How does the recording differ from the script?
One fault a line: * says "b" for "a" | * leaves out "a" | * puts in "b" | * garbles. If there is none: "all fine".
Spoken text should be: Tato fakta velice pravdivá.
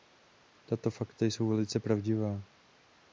* puts in "jsou"